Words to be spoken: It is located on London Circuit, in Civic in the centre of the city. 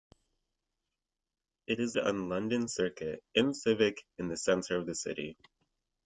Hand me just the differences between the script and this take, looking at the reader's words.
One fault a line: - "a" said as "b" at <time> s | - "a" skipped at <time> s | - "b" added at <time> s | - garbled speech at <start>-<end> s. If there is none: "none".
- "located" skipped at 1.9 s